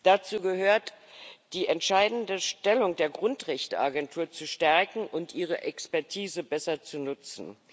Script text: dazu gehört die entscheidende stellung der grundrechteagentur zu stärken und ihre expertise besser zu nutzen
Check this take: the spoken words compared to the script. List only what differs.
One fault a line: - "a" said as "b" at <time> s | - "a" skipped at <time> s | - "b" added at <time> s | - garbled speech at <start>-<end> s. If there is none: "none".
none